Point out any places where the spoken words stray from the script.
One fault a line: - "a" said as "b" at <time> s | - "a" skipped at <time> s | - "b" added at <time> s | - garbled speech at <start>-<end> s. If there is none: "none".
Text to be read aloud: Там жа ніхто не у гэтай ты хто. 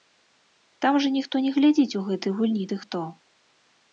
- "глядзіць" added at 1.6 s
- "гульні" added at 2.4 s